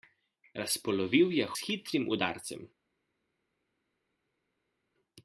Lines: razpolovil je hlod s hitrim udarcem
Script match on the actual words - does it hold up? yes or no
no